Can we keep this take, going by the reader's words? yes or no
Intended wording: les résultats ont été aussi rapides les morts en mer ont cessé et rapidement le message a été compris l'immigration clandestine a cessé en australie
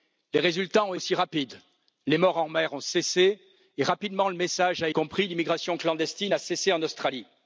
no